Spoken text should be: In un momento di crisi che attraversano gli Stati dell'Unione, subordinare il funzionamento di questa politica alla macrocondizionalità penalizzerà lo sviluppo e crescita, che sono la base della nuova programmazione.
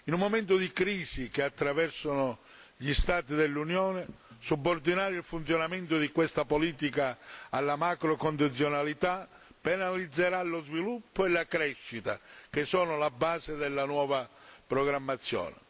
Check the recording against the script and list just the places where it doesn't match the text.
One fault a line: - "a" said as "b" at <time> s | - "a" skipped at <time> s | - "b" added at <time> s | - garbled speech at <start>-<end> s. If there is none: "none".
- "la" added at 11.3 s